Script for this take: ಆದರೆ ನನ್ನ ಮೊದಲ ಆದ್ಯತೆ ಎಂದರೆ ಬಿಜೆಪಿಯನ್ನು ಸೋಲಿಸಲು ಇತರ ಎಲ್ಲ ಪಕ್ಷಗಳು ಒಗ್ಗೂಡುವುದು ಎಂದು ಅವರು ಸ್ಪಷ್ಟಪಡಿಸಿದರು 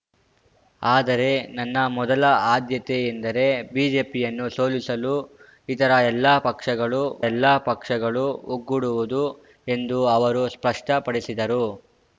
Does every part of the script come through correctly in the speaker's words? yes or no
no